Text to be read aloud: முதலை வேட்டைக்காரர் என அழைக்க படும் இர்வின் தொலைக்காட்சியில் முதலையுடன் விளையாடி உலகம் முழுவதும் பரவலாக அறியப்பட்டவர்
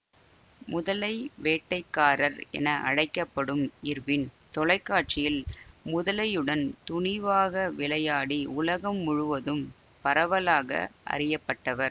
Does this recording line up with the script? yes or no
no